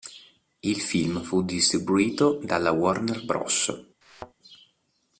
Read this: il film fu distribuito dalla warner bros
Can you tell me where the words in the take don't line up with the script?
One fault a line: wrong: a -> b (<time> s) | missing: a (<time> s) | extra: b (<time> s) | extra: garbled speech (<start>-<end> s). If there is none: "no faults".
no faults